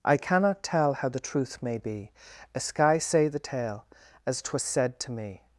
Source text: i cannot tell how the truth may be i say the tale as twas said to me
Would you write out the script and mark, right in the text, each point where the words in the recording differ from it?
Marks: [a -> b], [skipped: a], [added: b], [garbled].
i cannot tell how the truth may be [i -> a sky] say the tale as twas said to me